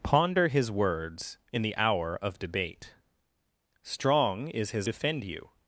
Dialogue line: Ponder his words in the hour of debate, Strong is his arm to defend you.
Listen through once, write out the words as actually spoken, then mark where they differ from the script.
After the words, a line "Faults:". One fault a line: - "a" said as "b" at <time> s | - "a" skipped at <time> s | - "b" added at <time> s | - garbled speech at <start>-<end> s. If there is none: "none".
Ponder his words in the hour of debate, Strong is his defend you.
Faults:
- "arm to" skipped at 4.9 s